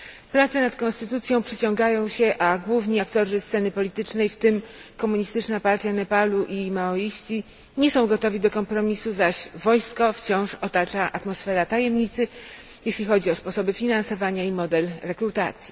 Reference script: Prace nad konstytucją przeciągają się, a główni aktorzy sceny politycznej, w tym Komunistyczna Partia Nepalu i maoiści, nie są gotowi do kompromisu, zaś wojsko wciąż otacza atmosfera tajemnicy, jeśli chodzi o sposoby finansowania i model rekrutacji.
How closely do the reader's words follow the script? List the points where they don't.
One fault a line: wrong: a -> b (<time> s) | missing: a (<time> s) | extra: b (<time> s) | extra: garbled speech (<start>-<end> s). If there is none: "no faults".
no faults